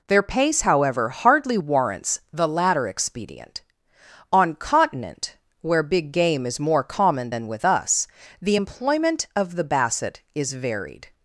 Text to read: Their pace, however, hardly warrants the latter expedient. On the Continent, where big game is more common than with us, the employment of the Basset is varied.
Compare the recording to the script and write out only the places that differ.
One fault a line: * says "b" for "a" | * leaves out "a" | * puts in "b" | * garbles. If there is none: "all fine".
* leaves out "the"